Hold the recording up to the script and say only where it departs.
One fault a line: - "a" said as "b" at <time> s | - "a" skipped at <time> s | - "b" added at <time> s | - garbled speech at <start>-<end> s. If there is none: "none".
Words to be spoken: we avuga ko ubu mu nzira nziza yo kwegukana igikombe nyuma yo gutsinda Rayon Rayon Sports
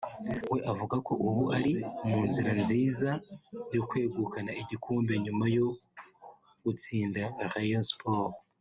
- "ari" added at 1.6 s
- "Rayon" skipped at 7.8 s